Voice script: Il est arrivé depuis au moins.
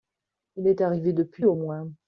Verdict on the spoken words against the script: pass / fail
pass